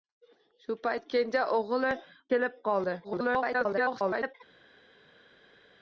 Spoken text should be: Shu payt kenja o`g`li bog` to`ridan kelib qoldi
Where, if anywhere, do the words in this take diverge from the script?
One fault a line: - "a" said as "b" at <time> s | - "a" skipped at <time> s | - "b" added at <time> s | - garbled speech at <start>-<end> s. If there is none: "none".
- "bog to`ridan" skipped at 1.9 s
- garbled speech at 3.0-4.4 s